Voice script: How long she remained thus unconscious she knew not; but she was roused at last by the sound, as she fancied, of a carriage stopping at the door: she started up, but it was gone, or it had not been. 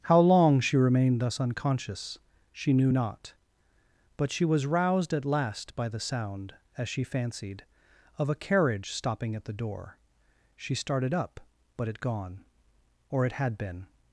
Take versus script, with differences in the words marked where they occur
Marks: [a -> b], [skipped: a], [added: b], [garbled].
How long she remained thus unconscious she knew not; but she was roused at last by the sound, as she fancied, of a carriage stopping at the door: she started up, but it [skipped: was] gone, or it had [skipped: not] been.